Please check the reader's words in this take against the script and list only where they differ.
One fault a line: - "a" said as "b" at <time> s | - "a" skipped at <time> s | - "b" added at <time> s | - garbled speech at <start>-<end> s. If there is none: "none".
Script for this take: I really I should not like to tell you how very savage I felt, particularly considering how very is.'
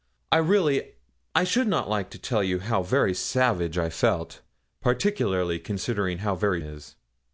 none